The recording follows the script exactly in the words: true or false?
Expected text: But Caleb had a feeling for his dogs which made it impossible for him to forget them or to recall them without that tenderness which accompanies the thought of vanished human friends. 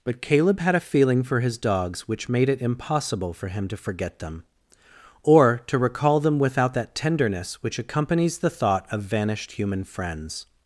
true